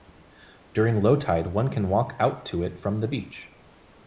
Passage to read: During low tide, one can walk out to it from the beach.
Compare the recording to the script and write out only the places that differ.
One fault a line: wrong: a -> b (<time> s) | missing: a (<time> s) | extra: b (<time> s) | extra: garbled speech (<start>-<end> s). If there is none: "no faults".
no faults